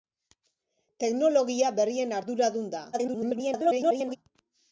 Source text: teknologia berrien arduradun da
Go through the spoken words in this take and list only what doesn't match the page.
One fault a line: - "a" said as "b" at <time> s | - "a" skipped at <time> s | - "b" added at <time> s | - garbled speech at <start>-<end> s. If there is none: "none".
- garbled speech at 2.9-4.2 s